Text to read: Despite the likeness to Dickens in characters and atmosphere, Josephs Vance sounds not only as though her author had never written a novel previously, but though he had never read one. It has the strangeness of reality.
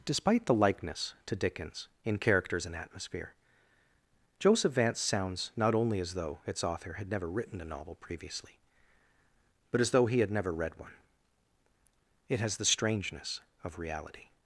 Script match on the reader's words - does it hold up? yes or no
no